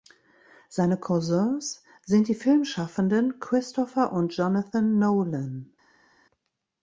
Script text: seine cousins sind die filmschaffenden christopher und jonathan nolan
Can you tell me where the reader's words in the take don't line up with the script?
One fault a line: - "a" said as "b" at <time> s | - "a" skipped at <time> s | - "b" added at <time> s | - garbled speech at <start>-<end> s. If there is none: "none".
none